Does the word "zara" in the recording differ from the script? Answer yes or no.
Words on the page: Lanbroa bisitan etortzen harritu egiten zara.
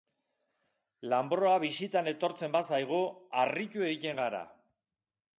yes